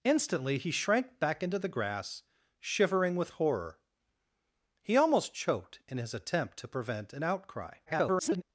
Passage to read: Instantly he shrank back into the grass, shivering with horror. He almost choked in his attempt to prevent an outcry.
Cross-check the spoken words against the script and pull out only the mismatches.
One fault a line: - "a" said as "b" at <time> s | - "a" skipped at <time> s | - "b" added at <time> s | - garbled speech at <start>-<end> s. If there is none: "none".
- garbled speech at 7.9-8.4 s